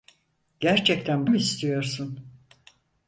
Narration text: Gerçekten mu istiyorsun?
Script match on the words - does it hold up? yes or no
yes